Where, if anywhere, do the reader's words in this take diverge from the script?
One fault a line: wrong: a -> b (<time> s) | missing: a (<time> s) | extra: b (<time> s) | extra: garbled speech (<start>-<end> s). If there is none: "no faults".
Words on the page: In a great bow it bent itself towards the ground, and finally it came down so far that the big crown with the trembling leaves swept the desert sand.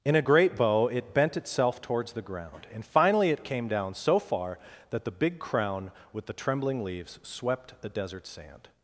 no faults